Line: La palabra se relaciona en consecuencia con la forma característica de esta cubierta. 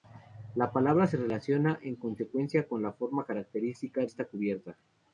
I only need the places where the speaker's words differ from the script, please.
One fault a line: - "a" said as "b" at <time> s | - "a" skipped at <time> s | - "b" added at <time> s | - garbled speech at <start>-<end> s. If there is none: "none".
- "de" skipped at 4.1 s